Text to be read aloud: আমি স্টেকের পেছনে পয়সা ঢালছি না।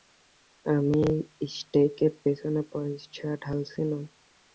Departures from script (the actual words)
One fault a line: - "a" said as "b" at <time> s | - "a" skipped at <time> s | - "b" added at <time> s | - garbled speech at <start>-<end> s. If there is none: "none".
none